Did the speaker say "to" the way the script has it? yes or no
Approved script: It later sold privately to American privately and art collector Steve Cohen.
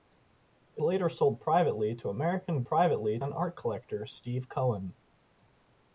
yes